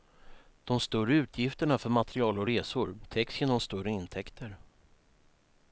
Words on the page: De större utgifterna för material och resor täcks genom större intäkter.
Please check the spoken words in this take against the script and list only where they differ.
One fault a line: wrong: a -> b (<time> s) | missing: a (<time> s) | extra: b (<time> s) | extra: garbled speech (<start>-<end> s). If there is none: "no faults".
no faults